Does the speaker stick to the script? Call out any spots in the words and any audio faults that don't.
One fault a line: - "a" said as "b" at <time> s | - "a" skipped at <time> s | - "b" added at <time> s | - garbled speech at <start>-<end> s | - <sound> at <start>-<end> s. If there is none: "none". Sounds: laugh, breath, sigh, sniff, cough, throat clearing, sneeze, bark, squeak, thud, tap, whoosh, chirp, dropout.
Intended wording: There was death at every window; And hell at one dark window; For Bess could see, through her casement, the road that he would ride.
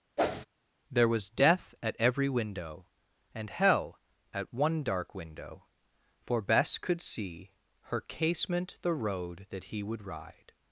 - whoosh at 0.2-0.5 s
- "through" skipped at 7.5 s